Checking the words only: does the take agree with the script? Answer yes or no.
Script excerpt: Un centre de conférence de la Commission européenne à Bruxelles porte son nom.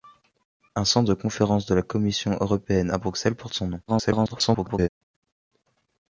no